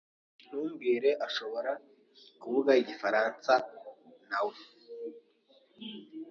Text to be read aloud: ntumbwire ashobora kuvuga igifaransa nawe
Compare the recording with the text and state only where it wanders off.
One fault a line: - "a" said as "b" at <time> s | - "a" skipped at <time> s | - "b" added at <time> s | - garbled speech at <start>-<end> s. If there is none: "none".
none